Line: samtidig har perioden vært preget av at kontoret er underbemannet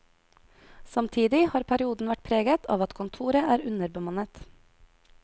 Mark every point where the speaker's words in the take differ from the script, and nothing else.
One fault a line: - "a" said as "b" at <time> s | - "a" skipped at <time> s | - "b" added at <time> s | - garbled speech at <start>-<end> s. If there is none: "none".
none